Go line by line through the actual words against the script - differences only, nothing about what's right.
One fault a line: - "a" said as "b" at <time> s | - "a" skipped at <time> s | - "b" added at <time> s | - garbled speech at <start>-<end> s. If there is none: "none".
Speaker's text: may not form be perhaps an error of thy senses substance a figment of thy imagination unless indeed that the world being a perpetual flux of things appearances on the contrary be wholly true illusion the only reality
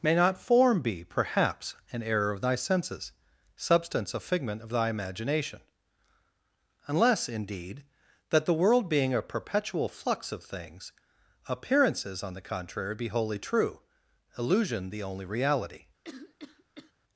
none